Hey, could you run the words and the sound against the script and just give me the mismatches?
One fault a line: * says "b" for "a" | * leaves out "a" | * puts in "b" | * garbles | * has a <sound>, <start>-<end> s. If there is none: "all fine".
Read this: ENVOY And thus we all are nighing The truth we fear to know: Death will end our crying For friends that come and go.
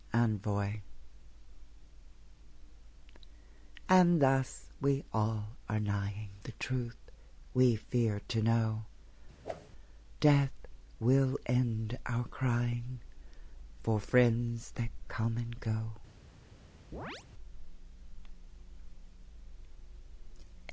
* has a whoosh, 9.4-9.7 s
* has a chirp, 16.9-17.3 s